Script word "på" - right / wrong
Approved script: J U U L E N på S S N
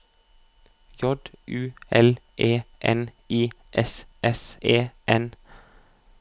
wrong